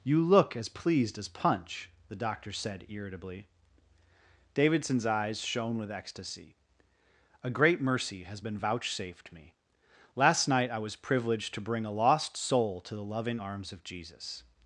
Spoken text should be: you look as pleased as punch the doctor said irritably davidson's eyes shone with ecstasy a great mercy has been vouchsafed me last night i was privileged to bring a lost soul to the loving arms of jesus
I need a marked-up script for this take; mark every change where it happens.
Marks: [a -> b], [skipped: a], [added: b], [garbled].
you look as pleased as punch the doctor said irritably davidson's eyes shone with ecstasy a great mercy has been vouchsafed me last night i was privileged to bring a lost soul to the loving arms of jesus